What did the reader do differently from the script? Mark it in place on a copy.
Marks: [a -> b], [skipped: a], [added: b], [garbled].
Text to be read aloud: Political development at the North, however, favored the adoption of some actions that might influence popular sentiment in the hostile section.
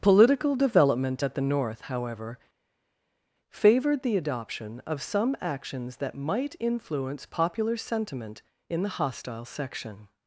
Political development at the North, however, favored the adoption of some actions that might influence popular sentiment in the hostile section.